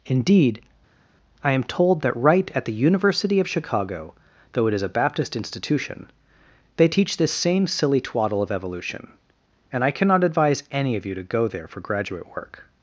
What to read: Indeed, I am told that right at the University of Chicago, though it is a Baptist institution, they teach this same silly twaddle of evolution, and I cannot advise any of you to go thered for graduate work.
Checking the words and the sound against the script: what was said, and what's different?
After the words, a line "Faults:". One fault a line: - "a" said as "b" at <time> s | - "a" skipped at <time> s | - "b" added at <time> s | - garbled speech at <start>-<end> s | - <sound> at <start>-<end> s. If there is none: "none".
Indeed, I am told that right at the University of Chicago, though it is a Baptist institution, they teach this same silly twaddle of evolution, and I cannot advise any of you to go there for graduate work.
Faults:
- "thered" said as "there" at 11.5 s